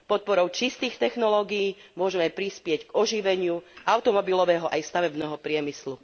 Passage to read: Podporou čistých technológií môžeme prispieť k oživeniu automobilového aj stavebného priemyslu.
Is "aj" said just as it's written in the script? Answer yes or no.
yes